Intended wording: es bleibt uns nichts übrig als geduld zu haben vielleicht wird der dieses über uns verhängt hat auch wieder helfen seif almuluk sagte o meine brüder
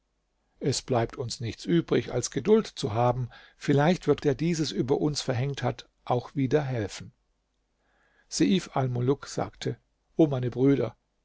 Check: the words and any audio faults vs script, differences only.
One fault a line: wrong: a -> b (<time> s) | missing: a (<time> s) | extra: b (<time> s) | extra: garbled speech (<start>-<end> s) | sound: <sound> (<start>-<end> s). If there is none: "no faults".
no faults